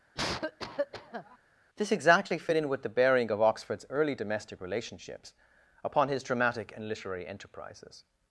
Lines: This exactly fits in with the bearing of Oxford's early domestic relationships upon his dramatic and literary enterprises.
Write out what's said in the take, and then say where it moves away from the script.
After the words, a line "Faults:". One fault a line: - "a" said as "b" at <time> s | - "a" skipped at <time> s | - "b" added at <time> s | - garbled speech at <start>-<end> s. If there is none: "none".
This exactly fit in with the bearing of Oxford's early domestic relationships upon his dramatic and literary enterprises.
Faults:
- "fits" said as "fit" at 2.4 s